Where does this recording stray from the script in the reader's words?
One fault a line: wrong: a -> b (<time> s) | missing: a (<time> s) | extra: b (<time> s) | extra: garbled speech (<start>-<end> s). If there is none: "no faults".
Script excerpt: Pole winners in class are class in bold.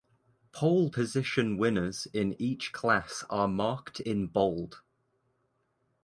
extra: position (0.9 s)
extra: each (2.4 s)
wrong: class -> marked (3.5 s)